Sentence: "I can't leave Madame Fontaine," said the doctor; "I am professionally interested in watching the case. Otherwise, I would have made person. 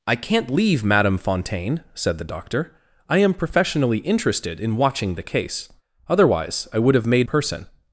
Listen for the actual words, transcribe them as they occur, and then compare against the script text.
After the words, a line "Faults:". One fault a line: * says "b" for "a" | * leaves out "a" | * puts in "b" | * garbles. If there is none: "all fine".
"I can't leave Madame Fontaine," said the doctor; "I am professionally interested in watching the case. Otherwise, I would have made person.
Faults:
all fine